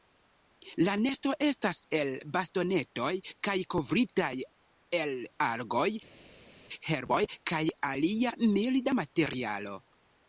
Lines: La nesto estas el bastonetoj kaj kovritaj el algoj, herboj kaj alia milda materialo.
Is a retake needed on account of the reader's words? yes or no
no